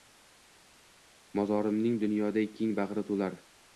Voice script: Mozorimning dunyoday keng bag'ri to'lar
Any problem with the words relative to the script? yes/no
no